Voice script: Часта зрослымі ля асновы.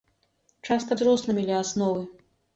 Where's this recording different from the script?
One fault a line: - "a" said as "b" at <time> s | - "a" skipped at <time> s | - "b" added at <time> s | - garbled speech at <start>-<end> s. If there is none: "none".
none